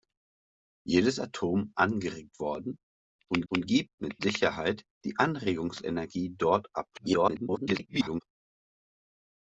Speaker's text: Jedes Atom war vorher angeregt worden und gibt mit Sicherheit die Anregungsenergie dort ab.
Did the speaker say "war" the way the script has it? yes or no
no